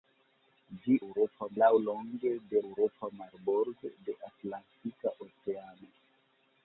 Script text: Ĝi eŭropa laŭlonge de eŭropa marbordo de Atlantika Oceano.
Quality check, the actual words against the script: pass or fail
pass